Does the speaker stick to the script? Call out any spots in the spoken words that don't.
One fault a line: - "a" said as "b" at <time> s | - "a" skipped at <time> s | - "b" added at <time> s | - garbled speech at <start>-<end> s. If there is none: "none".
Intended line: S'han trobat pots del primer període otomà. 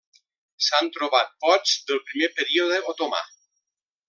none